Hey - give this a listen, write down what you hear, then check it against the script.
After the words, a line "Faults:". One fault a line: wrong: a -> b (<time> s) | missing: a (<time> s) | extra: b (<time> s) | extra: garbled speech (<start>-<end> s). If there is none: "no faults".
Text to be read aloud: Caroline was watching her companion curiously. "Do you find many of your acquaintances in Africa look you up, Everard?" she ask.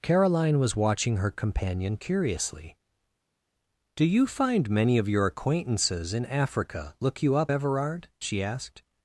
Caroline was watching her companion curiously. "Do you find many of your acquaintances in Africa look you up, Everard?" she asked.
Faults:
wrong: ask -> asked (8.4 s)